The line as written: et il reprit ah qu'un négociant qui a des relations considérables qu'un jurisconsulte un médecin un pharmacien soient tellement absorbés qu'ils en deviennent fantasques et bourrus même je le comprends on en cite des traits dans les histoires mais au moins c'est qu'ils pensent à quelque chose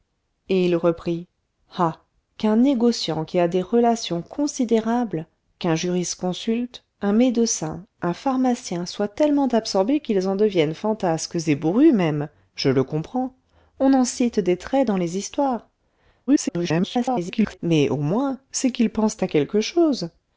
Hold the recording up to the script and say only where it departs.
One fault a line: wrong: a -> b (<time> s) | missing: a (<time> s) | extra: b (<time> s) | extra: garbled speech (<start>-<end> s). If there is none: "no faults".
extra: garbled speech (16.3-17.6 s)